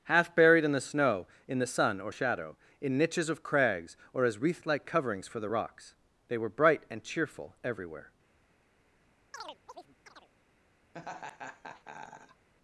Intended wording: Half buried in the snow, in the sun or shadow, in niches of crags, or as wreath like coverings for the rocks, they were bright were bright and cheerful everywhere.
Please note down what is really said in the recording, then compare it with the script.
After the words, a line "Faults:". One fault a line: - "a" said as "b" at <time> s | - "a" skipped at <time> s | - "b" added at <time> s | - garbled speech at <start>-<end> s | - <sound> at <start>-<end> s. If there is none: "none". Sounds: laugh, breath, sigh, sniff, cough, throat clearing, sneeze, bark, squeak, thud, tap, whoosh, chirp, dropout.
Half buried in the snow, in the sun or shadow, in niches of crags, or as wreath like coverings for the rocks, they were bright and cheerful everywhere.
Faults:
- "were bright" skipped at 6.8 s
- chirp at 9.3-10.3 s
- laugh at 10.9-12.5 s